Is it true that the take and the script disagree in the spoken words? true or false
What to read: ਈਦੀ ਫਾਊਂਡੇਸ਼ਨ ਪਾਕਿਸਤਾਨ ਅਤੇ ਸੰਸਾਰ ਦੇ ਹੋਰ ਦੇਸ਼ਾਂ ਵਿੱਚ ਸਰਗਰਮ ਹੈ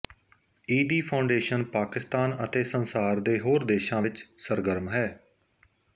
false